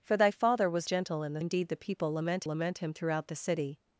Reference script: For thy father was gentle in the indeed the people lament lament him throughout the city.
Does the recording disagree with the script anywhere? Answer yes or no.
no